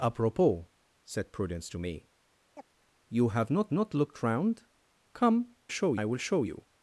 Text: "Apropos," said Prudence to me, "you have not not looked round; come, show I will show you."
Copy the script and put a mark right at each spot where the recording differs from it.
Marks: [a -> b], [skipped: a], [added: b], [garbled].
"Apropos," said Prudence to me, "you have not not looked round; come, show I will show you."